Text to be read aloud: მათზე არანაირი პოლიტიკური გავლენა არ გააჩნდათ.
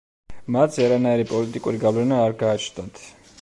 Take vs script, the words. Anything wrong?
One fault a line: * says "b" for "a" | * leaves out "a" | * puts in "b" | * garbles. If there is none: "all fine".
all fine